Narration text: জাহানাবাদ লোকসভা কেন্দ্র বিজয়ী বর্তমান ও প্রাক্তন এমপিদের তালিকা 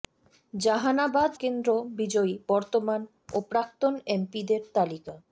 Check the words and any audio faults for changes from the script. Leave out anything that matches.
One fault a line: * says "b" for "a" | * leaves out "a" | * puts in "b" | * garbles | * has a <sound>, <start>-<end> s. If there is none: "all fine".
* leaves out "লোকসভা"